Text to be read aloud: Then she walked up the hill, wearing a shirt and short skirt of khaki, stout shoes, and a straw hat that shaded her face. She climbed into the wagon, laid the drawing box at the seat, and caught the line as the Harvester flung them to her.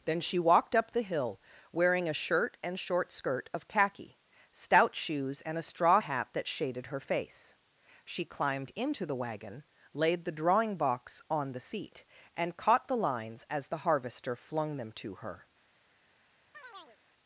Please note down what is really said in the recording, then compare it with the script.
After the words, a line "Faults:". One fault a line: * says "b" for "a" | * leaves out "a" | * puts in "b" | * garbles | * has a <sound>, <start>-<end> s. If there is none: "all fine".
Then she walked up the hill, wearing a shirt and short skirt of khaki, stout shoes, and a straw hat that shaded her face. She climbed into the wagon, laid the drawing box on the seat, and caught the lines as the Harvester flung them to her.
Faults:
* says "on" for "at"
* says "lines" for "line"
* has a chirp, 16.5-17.0 s